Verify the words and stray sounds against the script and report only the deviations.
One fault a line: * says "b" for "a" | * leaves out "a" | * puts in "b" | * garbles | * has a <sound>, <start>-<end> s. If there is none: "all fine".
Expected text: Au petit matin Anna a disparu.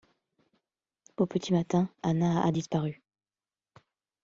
all fine